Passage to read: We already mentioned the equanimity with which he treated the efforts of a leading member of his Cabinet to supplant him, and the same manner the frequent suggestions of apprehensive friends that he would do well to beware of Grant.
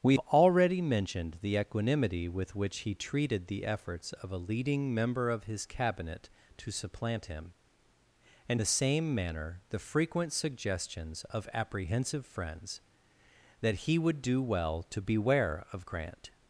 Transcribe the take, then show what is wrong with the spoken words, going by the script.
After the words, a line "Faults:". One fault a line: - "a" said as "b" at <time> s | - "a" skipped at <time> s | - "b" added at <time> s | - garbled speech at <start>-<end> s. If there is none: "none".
We already mentioned the equanimity with which he treated the efforts of a leading member of his Cabinet to supplant him, and the same manner the frequent suggestions of apprehensive friends that he would do well to beware of Grant.
Faults:
none